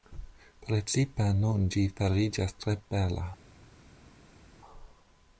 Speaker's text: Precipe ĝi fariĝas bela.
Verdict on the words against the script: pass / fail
fail